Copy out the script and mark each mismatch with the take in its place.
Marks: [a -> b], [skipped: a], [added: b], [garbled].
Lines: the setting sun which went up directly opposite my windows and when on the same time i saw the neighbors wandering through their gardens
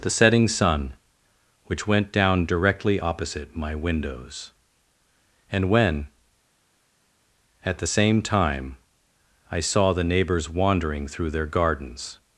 the setting sun which went [up -> down] directly opposite my windows and when [on -> at] the same time i saw the neighbors wandering through their gardens